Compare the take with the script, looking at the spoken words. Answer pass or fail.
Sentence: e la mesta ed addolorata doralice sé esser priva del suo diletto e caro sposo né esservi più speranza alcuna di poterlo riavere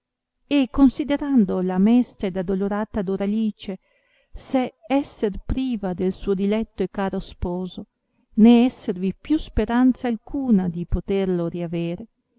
fail